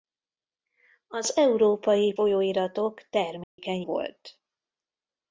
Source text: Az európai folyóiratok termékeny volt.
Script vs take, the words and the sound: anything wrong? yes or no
yes